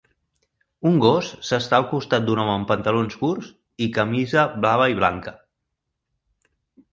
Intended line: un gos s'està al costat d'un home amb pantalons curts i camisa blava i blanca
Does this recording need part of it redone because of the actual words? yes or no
no